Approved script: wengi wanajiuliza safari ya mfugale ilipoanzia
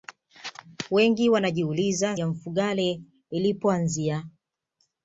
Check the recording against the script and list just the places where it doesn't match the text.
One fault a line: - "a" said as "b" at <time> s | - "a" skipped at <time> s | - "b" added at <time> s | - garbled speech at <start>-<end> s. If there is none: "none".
- "safari" skipped at 2.2 s